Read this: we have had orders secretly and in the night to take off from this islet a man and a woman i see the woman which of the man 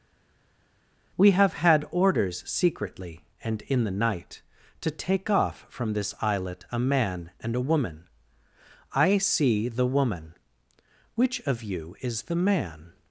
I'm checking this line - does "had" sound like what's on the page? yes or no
yes